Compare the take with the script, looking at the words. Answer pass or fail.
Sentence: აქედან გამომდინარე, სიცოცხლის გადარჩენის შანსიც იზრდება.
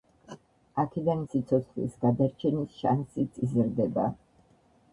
fail